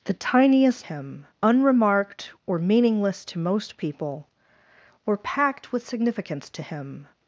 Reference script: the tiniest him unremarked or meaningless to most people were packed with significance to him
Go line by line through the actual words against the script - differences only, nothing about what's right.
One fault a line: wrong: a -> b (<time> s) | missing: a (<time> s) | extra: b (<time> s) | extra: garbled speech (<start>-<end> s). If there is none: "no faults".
no faults